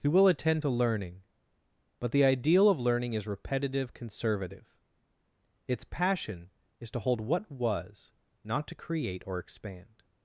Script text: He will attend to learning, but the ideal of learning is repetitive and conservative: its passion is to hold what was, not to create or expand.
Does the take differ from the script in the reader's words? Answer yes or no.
yes